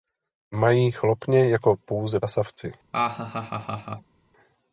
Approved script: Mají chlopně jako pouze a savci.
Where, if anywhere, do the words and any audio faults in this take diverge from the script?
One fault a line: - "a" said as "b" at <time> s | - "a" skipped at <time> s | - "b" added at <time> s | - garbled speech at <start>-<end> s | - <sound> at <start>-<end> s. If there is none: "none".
- laugh at 2.9-4.2 s